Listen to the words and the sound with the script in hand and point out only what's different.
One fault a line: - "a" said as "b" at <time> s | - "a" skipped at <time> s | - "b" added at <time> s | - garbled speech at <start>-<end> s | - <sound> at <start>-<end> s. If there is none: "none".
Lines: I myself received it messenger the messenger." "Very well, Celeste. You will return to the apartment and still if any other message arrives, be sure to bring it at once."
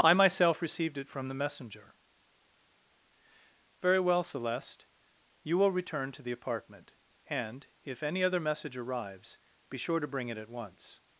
- "messenger" said as "from" at 1.1 s
- "still" skipped at 7.7 s